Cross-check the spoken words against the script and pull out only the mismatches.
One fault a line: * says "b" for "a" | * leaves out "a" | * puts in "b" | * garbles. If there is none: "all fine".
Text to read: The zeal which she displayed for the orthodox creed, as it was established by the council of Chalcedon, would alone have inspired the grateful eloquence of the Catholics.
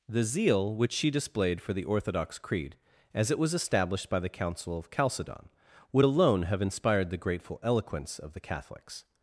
all fine